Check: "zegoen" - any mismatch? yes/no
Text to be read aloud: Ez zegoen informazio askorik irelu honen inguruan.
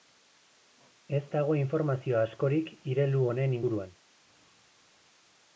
yes